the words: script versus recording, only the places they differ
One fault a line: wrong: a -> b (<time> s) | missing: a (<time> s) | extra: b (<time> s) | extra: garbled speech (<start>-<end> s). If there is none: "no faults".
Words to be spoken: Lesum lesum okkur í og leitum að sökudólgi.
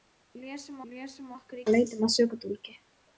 no faults